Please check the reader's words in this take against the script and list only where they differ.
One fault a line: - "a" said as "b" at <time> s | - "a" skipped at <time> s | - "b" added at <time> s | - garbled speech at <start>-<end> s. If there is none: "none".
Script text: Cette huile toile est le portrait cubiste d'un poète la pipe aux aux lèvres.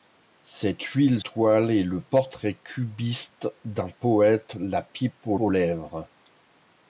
none